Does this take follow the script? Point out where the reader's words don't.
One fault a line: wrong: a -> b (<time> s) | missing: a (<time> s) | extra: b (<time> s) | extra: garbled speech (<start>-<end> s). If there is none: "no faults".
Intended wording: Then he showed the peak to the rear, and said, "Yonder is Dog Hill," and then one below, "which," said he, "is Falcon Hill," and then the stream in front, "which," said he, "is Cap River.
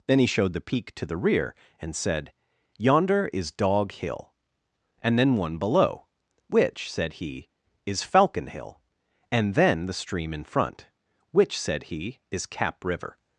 no faults